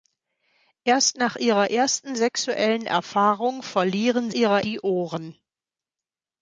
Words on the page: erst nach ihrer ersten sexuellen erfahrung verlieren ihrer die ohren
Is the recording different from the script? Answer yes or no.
no